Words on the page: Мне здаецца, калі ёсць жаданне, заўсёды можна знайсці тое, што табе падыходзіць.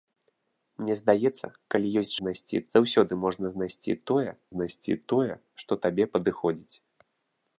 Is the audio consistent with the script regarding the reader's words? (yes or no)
no